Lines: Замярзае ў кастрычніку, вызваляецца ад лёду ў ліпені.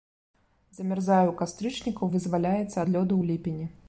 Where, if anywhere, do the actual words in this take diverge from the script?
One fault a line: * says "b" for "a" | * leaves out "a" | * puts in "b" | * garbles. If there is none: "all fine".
all fine